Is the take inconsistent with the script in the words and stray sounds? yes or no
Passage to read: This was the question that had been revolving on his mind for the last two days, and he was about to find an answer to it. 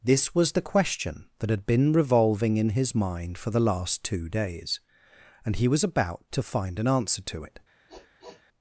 yes